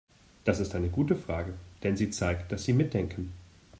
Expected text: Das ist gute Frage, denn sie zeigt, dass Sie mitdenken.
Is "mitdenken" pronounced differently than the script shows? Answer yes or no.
no